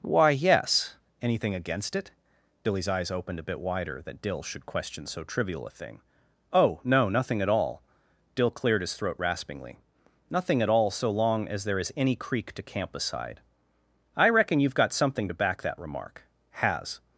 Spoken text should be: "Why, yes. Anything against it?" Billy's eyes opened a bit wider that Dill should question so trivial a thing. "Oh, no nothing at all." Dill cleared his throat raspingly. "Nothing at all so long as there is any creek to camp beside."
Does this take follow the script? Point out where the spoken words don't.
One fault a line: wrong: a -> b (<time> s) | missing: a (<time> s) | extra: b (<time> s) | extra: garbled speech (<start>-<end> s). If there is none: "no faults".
extra: I reckon you've got something to back that remark Has (14.1 s)